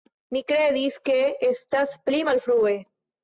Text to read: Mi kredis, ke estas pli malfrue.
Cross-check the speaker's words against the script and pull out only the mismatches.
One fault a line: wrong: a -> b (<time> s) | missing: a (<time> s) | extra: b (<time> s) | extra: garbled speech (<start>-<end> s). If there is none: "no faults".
no faults